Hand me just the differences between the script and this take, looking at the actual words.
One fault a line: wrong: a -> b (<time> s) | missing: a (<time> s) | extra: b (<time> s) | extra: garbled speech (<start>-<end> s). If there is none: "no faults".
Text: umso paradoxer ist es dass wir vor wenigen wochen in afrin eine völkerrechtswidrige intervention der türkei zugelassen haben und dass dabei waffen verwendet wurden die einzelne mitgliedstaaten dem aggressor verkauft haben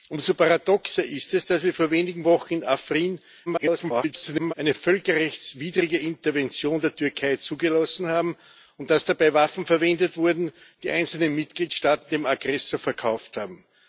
extra: garbled speech (3.5-4.5 s)